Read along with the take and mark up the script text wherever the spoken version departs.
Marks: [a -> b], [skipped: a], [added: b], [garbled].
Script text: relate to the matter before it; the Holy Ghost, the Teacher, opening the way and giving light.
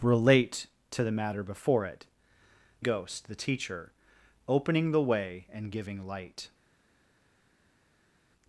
relate to the matter before it; [skipped: the Holy] Ghost, the Teacher, opening the way and giving light.